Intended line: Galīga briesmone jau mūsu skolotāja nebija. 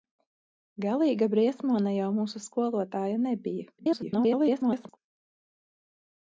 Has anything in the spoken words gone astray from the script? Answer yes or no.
yes